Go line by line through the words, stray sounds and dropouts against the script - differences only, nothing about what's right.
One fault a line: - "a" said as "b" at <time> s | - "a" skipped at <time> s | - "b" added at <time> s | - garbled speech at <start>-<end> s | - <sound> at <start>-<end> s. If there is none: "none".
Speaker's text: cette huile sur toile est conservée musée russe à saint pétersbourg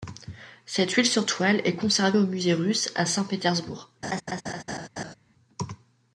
- "au" added at 2.2 s
- laugh at 4.0-5.1 s